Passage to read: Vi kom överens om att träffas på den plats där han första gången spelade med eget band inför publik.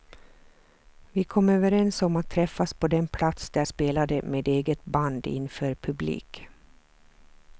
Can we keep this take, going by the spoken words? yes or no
no